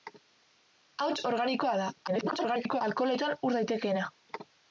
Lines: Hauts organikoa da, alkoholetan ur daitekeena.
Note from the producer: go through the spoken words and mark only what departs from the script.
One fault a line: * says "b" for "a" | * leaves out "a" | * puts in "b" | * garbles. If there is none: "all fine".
* garbles